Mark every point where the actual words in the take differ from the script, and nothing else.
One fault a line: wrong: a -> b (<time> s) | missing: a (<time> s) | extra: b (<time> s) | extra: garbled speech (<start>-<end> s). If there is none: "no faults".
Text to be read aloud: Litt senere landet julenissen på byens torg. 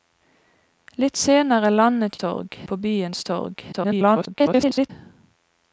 wrong: julenissen -> torg (2.2 s)
extra: garbled speech (3.7-4.9 s)